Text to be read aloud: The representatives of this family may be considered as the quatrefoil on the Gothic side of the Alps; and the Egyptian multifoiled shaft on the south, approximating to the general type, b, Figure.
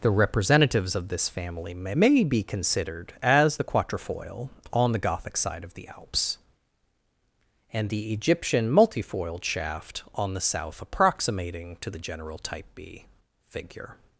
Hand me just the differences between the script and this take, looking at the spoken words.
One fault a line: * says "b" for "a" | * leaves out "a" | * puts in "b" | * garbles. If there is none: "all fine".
* puts in "may"